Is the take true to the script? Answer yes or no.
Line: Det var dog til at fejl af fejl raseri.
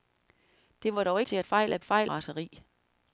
yes